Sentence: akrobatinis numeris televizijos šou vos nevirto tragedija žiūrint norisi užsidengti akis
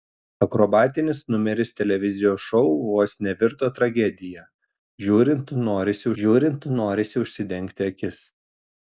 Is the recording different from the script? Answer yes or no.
yes